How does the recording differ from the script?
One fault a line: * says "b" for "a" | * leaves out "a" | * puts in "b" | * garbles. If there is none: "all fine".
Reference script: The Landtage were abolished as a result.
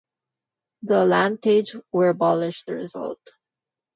* leaves out "as"